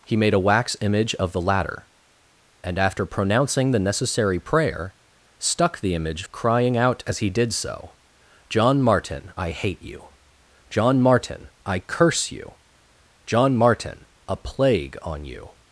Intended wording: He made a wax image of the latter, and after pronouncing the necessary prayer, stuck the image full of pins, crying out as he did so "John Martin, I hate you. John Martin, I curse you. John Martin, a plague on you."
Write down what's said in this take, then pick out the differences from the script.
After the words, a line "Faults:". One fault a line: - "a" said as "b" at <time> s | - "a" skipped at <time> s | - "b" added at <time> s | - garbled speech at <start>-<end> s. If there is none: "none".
He made a wax image of the latter, and after pronouncing the necessary prayer, stuck the image crying out as he did so "John Martin, I hate you. John Martin, I curse you. John Martin, a plague on you."
Faults:
- "full of pins" skipped at 6.2 s